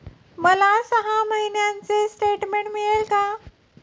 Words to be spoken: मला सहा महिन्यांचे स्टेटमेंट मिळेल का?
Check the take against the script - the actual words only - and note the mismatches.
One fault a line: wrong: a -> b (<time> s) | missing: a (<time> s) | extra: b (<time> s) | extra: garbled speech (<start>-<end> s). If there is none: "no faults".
no faults